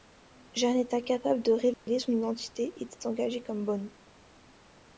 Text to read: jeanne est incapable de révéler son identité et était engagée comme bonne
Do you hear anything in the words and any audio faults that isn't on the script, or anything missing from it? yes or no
yes